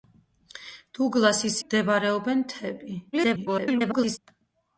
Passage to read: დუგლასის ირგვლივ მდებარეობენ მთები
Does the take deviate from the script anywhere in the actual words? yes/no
yes